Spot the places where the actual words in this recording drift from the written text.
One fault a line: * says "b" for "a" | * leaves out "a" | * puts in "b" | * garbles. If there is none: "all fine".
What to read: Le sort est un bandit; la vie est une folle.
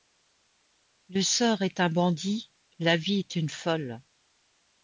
all fine